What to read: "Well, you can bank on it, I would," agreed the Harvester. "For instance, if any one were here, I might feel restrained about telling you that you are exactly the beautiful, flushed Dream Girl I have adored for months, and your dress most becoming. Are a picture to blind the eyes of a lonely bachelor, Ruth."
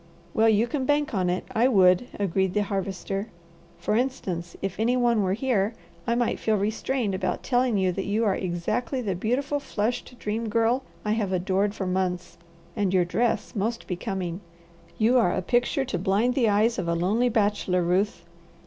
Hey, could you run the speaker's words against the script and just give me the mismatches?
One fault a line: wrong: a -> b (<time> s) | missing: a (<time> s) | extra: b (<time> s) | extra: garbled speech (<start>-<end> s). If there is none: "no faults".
extra: You (15.0 s)